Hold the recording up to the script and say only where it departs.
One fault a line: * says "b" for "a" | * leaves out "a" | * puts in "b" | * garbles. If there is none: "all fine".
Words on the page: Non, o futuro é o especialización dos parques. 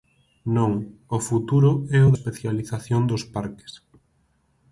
all fine